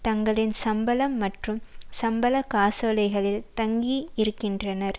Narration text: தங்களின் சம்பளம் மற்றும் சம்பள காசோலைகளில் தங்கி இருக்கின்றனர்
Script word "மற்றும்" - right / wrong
right